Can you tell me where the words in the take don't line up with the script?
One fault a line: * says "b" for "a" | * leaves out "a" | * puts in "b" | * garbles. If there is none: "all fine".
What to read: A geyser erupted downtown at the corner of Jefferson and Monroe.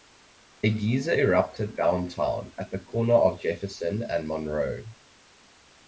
all fine